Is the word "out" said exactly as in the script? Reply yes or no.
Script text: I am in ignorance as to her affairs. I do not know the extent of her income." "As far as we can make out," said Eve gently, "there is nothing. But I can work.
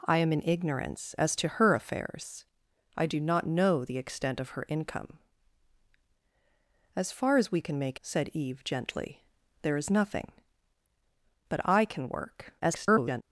no